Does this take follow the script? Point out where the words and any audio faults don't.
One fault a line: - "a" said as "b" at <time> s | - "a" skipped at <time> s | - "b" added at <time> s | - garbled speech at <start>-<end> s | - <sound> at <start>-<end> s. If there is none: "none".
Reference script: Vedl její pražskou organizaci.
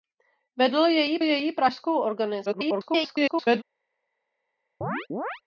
- "její" added at 1.2 s
- garbled speech at 2.4-3.6 s
- chirp at 4.8-5.4 s